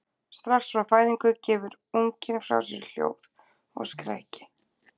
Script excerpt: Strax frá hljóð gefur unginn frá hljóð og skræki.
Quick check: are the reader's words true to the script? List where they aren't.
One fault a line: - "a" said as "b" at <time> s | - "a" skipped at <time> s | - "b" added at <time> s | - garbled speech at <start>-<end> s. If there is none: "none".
- "hljóð" said as "fæðingu" at 0.9 s
- "sér" added at 2.7 s